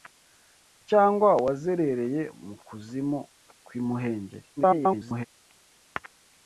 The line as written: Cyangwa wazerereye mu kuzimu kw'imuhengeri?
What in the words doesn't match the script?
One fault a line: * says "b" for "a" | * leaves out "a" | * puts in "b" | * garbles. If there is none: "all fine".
* garbles